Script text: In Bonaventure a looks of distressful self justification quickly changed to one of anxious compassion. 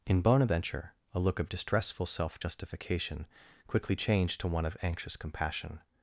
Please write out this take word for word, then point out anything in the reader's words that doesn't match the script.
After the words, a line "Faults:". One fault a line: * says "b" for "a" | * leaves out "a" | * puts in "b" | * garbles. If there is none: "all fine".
In Bonaventure a look of distressful self justification quickly changed to one of anxious compassion.
Faults:
* says "look" for "looks"